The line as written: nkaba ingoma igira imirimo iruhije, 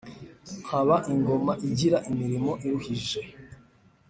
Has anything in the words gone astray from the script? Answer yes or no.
no